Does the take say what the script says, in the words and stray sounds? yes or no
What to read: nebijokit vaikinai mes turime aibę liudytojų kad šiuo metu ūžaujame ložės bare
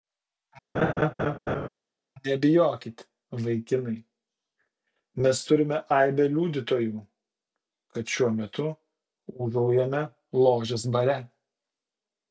no